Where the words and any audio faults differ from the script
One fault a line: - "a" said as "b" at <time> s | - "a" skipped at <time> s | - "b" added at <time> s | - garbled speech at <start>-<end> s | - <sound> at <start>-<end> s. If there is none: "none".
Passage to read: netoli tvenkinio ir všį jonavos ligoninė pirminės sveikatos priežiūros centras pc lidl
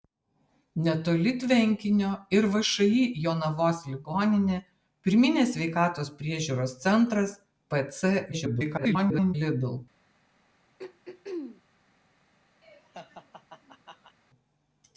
- garbled speech at 8.3-9.3 s
- throat clearing at 10.8-11.6 s
- laugh at 12.6-14.2 s